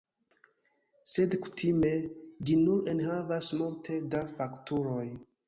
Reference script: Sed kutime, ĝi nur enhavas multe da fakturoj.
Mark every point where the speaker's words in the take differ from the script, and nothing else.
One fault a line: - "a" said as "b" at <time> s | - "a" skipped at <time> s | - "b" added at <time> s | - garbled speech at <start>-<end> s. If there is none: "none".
none